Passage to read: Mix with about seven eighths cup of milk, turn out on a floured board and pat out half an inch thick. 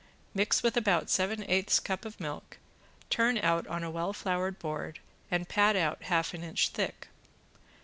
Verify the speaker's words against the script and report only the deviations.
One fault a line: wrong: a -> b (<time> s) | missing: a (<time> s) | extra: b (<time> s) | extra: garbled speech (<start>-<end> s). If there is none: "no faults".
extra: well (3.9 s)